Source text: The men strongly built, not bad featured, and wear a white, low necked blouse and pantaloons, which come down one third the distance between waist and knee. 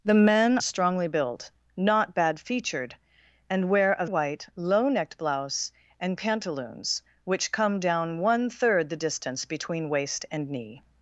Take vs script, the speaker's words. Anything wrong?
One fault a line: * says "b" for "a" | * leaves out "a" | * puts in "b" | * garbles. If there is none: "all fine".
all fine